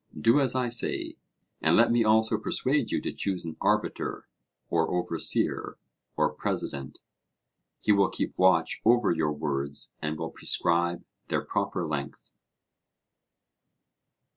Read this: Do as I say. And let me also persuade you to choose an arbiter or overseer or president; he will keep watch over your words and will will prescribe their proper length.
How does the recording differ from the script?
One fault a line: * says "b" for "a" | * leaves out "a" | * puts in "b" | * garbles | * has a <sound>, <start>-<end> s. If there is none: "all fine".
* leaves out "will"